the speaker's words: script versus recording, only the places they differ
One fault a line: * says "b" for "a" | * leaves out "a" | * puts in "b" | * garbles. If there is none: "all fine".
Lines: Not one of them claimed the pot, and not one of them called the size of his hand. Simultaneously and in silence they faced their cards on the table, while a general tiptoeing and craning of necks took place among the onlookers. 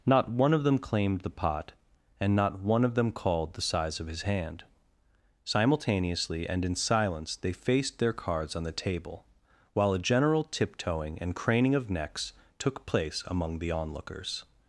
all fine